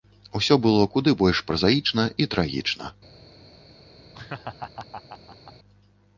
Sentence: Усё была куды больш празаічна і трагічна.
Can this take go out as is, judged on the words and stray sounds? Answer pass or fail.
fail